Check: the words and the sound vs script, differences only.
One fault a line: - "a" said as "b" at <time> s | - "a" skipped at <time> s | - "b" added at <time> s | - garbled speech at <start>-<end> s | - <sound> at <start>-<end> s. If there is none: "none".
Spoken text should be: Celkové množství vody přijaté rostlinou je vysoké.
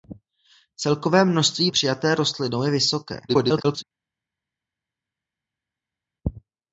- "vody" skipped at 1.7 s
- garbled speech at 3.3-3.8 s